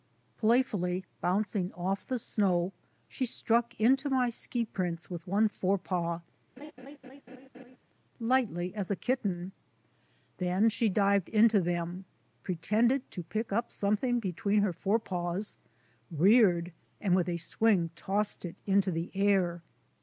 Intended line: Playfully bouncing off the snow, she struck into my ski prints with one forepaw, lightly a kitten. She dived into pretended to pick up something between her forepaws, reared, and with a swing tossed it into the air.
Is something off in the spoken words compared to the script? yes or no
yes